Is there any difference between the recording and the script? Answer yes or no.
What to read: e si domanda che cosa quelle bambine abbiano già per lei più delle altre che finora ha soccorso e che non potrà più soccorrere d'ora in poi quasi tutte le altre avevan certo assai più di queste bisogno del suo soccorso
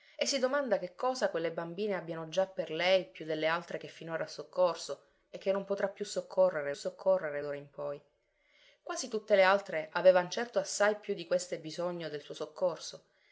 yes